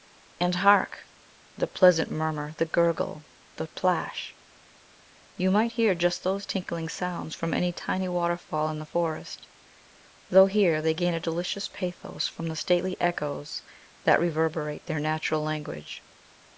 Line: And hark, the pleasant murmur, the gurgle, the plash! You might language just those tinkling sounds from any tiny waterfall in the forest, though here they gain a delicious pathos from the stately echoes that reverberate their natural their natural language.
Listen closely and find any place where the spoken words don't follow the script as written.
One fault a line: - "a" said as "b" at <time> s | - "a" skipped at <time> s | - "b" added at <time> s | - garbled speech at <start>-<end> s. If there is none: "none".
- "language" said as "hear" at 5.7 s
- "their natural" skipped at 15.4 s